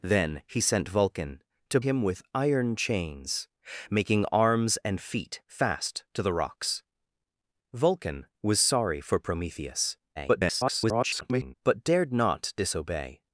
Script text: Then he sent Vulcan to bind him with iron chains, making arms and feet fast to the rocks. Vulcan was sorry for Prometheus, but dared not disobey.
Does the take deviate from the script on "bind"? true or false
true